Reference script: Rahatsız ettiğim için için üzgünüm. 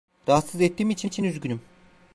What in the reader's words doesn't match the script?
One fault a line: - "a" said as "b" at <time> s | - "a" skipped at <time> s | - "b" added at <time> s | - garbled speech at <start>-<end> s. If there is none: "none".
none